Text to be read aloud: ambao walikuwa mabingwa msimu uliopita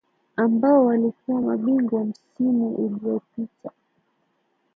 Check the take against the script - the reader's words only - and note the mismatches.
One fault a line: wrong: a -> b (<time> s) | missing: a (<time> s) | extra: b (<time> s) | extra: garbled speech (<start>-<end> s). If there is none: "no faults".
no faults